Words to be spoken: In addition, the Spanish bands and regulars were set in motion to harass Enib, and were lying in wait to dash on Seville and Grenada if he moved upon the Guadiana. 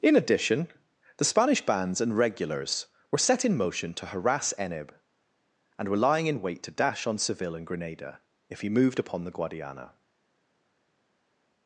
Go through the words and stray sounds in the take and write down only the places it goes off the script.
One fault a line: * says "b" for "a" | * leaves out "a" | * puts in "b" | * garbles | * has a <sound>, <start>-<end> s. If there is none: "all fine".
all fine